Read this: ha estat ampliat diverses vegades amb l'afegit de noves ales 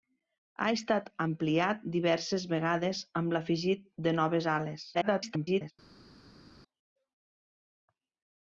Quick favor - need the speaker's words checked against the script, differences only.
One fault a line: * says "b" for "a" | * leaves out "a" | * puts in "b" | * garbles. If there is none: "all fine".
* garbles